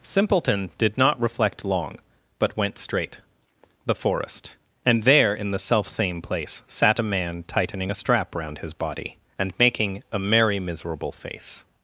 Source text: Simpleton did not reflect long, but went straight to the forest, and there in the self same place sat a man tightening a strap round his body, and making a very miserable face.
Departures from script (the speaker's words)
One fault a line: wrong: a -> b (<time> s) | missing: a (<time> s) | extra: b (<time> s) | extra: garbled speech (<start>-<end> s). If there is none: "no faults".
missing: to (3.2 s)
wrong: very -> merry (10.2 s)